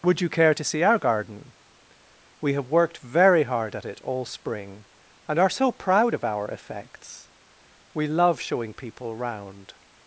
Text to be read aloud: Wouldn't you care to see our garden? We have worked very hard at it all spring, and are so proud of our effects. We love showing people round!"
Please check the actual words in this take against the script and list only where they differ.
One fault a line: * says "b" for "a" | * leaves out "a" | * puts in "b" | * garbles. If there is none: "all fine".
* says "Would" for "Wouldn't"